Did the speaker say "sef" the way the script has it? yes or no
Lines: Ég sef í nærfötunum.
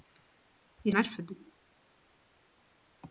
no